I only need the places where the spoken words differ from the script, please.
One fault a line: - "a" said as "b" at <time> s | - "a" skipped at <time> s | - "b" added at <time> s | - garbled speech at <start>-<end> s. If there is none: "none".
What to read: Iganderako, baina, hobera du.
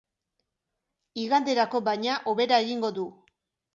- "egingo" added at 2.7 s